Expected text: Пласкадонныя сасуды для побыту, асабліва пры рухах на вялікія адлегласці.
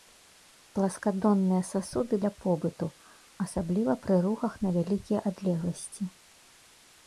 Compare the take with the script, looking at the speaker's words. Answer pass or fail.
pass